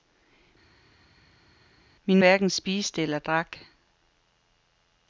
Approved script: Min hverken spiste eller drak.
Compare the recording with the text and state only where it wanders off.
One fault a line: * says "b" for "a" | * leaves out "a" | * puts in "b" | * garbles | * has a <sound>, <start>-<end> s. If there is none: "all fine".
all fine